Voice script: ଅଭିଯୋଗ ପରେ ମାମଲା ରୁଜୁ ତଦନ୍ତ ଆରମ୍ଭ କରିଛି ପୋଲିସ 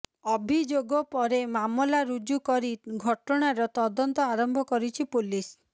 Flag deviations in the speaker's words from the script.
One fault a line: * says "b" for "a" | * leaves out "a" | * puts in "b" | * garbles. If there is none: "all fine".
* puts in "କରି ଘଟଣାର"